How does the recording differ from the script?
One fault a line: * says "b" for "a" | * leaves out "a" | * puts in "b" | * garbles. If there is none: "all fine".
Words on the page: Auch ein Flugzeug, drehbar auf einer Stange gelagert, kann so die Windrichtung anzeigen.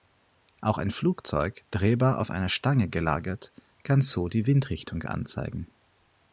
all fine